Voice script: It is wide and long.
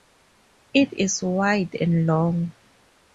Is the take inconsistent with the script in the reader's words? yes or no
no